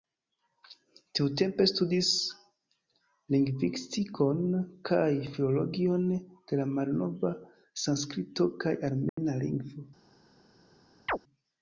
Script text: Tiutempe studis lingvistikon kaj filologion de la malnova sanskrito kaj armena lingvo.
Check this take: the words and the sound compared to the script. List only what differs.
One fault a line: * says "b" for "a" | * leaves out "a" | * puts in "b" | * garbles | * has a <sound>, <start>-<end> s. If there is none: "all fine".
* has a dropout, 9.1-9.2 s
* has a chirp, 11.1-11.2 s